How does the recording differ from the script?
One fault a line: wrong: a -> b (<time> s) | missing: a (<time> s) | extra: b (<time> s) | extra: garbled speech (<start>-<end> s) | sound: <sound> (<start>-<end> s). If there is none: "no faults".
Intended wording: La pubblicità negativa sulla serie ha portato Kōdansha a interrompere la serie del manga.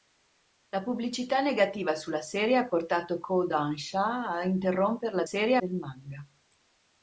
no faults